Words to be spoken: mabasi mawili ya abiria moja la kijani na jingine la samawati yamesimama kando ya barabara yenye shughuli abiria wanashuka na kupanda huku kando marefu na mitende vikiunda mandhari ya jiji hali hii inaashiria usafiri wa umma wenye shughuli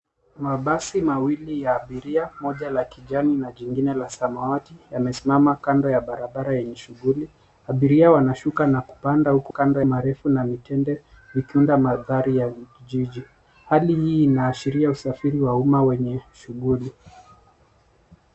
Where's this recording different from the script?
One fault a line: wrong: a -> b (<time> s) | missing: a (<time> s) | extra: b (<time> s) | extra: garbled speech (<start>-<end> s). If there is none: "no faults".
no faults